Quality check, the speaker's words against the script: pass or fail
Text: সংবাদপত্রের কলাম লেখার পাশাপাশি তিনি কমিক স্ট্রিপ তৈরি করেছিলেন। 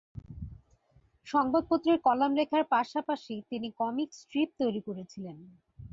pass